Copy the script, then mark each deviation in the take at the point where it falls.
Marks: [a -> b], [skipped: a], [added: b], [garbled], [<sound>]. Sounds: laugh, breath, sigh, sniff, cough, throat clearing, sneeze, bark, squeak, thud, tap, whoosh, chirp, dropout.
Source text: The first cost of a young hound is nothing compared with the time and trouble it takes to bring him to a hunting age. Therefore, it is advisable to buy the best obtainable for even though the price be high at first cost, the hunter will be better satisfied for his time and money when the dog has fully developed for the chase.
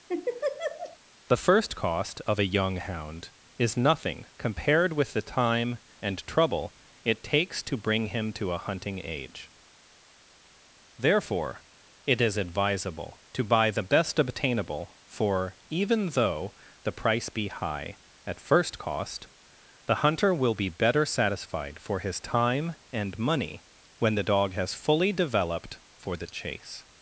[laugh] The first cost of a young hound is nothing compared with the time and trouble it takes to bring him to a hunting age. Therefore, it is advisable to buy the best obtainable for even though the price be high at first cost, the hunter will be better satisfied for his time and money when the dog has fully developed for the chase.